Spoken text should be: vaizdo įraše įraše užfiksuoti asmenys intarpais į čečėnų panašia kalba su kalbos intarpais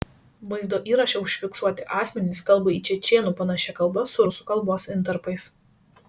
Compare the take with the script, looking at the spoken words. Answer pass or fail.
fail